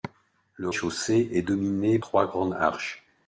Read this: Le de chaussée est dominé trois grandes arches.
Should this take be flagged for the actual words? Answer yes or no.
no